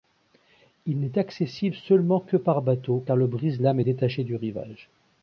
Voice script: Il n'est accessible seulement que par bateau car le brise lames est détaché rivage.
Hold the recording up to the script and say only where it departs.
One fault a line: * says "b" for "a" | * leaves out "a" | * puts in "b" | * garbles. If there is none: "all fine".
* puts in "du"